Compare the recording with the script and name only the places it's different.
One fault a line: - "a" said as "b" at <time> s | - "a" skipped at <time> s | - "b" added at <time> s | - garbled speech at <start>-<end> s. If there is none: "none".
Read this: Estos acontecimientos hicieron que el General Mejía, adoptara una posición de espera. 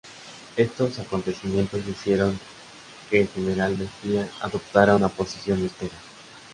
none